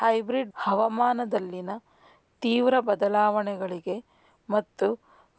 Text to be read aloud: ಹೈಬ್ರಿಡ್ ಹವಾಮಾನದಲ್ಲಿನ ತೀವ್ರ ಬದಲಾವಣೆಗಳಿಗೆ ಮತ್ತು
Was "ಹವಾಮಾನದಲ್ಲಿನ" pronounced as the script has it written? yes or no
yes